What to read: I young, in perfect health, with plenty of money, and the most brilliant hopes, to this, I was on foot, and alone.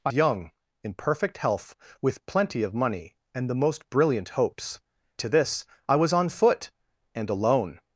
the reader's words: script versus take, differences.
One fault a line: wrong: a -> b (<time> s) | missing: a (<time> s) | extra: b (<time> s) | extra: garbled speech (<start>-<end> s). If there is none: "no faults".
no faults